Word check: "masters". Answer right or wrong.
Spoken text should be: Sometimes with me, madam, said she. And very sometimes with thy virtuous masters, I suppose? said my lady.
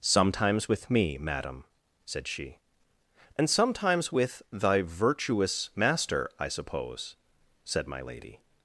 wrong